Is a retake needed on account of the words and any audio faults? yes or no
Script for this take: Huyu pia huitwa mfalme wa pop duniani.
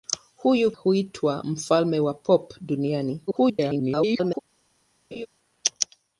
yes